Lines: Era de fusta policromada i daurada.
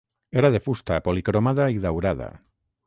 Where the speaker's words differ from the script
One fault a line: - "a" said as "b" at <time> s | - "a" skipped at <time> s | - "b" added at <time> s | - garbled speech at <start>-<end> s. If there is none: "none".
none